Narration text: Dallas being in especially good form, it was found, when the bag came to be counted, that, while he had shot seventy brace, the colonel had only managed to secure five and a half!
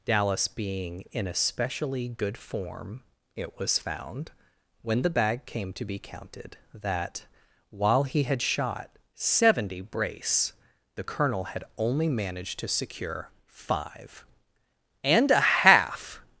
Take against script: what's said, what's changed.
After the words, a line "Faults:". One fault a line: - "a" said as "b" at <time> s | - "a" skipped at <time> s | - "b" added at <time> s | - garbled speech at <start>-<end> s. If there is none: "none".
Dallas being in especially good form, it was found, when the bag came to be counted, that, while he had shot seventy brace, the colonel had only managed to secure five and a half!
Faults:
none